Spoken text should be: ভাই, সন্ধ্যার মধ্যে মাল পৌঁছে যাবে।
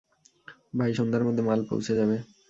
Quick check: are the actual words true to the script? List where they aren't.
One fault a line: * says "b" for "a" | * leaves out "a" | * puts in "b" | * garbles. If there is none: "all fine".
all fine